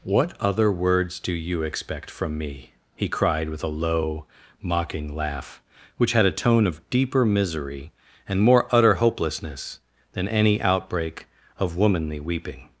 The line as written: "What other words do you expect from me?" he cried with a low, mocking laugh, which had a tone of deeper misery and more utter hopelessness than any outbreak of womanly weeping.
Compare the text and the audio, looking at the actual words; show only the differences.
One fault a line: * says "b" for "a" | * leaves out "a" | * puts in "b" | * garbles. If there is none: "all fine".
all fine